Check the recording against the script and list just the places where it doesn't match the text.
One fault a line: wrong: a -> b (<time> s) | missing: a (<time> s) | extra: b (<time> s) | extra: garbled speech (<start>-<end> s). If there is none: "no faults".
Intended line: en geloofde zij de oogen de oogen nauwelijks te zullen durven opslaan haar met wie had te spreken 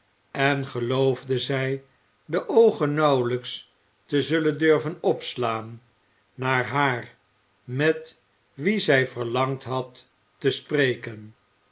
missing: de oogen (2.9 s)
extra: naar (6.3 s)
extra: zij verlangd (8.8 s)